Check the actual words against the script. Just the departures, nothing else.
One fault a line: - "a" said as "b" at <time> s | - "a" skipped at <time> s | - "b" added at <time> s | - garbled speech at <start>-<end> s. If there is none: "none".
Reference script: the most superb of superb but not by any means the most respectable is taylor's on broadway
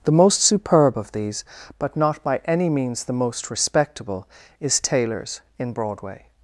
- "superb" said as "these" at 1.1 s
- "on" said as "in" at 5.6 s